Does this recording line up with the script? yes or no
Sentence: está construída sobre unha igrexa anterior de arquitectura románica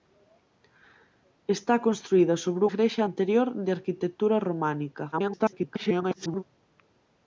no